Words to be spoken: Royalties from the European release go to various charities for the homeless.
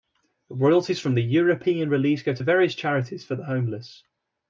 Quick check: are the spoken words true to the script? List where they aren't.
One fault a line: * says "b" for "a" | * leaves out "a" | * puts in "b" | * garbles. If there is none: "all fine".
all fine